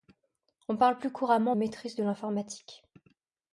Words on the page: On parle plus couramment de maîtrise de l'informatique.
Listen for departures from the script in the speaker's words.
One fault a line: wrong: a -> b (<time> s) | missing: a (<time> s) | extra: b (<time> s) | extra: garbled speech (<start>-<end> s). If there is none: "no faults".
missing: de (1.6 s)